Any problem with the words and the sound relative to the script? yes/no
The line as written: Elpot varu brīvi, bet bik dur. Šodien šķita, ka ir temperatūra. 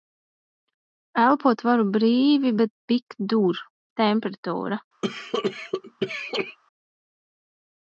yes